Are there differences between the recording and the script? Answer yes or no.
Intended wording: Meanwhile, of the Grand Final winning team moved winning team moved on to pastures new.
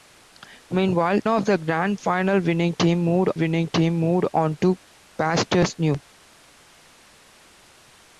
no